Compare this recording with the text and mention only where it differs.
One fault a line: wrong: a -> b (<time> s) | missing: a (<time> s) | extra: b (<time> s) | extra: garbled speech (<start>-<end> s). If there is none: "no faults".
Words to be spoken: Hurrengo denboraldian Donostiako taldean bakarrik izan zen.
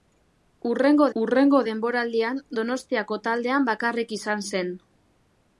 extra: hurrengo (1.2 s)